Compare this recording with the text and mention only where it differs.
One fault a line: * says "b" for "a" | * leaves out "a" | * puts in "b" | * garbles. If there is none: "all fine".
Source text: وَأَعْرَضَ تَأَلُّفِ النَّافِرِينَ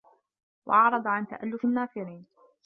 * puts in "عَنْ"